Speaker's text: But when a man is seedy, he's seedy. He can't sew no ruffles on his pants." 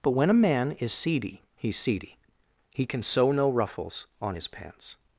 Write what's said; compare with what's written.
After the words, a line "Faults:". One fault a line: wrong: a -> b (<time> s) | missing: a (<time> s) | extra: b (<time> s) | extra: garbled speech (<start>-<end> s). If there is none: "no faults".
But when a man is seedy, he's seedy. He can sew no ruffles on his pants."
Faults:
wrong: can't -> can (2.8 s)